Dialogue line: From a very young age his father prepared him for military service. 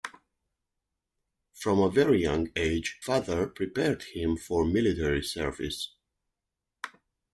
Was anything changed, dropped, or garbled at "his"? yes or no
yes